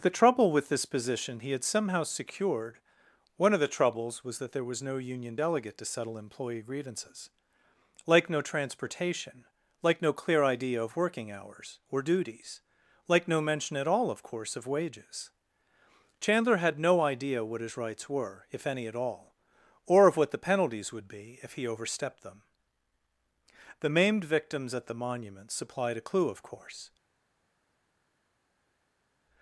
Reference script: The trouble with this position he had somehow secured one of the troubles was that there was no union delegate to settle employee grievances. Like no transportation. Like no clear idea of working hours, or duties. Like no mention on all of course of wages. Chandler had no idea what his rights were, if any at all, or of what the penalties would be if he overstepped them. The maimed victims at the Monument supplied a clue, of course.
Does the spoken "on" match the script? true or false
false